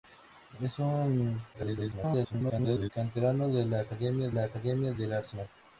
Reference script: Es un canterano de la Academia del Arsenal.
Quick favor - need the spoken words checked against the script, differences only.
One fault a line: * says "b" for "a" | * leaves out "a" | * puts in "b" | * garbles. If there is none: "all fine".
* garbles
* puts in "la Academia"